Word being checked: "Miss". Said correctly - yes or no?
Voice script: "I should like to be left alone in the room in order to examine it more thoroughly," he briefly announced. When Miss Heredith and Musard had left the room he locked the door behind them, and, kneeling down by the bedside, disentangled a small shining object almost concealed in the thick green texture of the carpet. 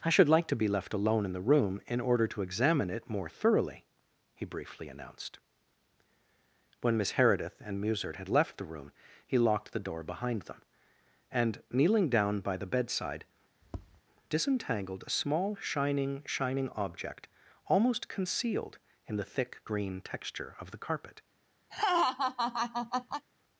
yes